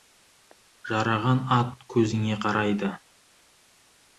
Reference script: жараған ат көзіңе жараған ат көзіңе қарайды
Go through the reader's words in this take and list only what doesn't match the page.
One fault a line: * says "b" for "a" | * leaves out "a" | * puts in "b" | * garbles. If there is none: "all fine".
* leaves out "жараған ат көзіңе"